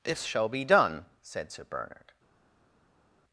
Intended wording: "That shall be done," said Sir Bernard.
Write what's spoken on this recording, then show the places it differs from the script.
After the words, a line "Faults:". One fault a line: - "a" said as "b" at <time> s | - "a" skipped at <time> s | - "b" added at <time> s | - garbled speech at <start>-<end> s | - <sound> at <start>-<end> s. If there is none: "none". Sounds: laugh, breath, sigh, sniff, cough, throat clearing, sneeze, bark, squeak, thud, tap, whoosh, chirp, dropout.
"This shall be done," said Sir Bernard.
Faults:
- "That" said as "This" at 0.0 s